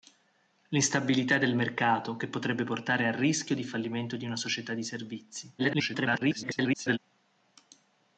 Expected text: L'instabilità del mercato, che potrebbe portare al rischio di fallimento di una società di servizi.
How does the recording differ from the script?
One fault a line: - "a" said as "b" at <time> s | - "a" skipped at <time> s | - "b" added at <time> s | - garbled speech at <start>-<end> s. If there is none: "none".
- garbled speech at 5.6-7.0 s